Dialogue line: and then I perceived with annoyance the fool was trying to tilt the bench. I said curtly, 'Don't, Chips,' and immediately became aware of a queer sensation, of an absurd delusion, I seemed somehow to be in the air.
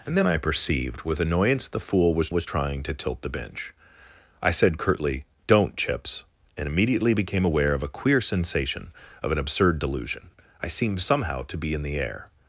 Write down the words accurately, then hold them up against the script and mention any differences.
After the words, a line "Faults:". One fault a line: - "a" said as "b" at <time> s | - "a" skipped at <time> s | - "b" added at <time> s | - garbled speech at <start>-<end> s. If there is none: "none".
and then I perceived with annoyance the fool was was trying to tilt the bench. I said curtly, 'Don't, Chips,' and immediately became aware of a queer sensation, of an absurd delusion, I seemed somehow to be in the air.
Faults:
- "was" added at 2.3 s